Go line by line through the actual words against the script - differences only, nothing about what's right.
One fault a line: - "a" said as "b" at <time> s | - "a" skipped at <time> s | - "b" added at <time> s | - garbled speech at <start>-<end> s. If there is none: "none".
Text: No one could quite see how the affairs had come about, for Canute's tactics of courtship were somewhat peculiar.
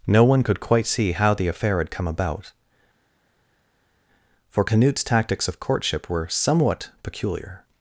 - "affairs" said as "affair" at 1.5 s